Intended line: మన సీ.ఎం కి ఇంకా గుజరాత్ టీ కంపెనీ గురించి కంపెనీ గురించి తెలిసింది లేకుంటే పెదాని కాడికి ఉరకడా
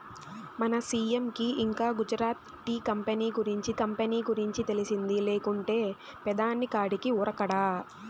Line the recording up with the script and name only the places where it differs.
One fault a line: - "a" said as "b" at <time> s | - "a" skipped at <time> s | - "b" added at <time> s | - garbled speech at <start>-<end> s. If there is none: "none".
none